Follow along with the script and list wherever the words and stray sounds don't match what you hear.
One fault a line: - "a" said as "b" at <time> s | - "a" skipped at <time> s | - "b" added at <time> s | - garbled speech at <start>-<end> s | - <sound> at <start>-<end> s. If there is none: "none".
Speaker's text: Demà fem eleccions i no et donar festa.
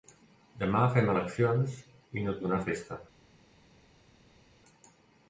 none